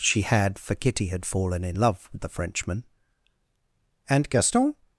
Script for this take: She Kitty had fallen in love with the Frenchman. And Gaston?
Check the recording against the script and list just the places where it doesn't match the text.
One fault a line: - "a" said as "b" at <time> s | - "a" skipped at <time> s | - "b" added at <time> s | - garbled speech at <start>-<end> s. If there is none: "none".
- "had for" added at 0.2 s